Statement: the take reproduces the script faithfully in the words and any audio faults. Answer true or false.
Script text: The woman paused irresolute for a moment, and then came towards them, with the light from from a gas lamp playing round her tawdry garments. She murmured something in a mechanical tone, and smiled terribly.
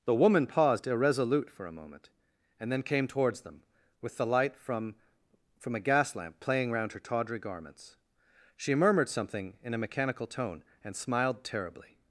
true